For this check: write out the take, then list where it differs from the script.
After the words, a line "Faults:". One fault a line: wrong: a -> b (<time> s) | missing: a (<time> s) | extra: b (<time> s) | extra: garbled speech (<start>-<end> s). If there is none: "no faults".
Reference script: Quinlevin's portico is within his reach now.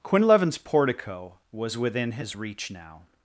Quinlevin's portico was within his reach now.
Faults:
wrong: is -> was (1.5 s)